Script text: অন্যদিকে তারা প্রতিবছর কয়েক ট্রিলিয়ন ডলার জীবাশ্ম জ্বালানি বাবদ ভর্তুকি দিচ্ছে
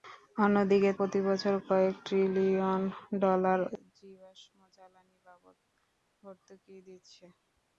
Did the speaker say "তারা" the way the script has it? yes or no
no